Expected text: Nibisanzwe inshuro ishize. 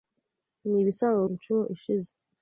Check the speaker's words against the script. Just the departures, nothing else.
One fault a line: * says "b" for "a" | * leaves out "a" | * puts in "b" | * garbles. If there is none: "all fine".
all fine